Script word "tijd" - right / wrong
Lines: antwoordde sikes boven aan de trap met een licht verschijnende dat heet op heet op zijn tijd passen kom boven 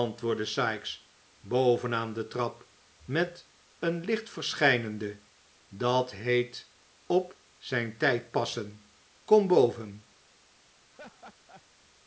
right